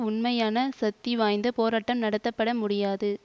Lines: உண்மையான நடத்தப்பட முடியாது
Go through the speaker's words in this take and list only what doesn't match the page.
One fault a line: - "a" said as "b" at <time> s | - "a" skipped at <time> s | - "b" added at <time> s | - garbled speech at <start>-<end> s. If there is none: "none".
- "சக்திவாய்ந்த போராட்டம்" added at 0.8 s